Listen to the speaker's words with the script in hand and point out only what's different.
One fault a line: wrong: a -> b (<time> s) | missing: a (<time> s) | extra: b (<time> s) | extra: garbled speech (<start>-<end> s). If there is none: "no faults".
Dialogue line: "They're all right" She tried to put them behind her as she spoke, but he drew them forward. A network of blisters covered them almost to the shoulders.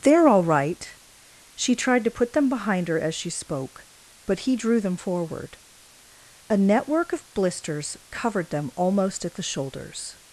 wrong: to -> at (9.2 s)